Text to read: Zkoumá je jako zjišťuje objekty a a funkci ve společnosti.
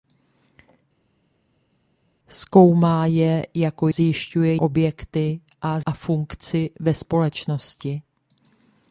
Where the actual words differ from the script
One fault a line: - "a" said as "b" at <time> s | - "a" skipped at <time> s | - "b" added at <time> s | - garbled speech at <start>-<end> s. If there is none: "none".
none